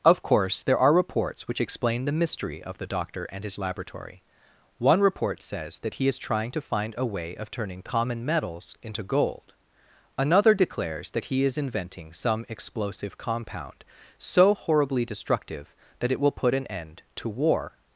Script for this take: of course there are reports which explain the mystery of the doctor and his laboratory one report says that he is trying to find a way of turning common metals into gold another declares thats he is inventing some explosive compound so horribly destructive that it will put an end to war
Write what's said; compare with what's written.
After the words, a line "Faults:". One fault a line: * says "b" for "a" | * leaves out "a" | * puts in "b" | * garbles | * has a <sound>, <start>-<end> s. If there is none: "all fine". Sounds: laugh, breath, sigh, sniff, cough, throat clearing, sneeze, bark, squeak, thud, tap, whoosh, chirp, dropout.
of course there are reports which explain the mystery of the doctor and his laboratory one report says that he is trying to find a way of turning common metals into gold another declares that he is inventing some explosive compound so horribly destructive that it will put an end to war
Faults:
* says "that" for "thats"